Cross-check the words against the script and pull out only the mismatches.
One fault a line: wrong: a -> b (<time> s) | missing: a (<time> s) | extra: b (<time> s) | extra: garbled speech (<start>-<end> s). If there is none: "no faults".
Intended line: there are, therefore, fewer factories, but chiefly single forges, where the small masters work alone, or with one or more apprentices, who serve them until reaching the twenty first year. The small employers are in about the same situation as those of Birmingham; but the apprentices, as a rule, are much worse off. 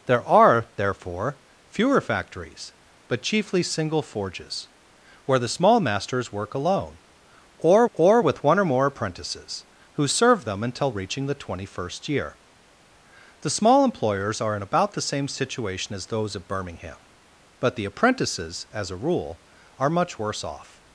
extra: or (7.9 s)